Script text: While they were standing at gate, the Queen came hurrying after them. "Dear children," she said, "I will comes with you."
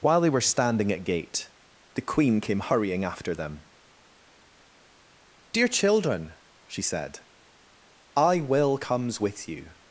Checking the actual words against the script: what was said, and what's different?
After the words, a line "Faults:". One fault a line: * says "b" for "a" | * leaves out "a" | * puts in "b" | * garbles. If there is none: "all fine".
While they were standing at gate, the Queen came hurrying after them. "Dear children," she said, "I will comes with you."
Faults:
all fine